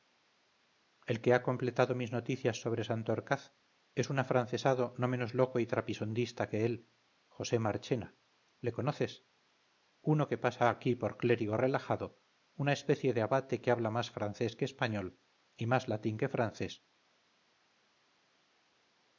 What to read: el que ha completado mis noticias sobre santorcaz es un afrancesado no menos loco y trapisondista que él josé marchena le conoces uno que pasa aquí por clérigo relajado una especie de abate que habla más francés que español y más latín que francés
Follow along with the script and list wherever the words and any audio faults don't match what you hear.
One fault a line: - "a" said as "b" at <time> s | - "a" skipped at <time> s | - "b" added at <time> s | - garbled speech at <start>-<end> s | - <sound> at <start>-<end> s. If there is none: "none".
none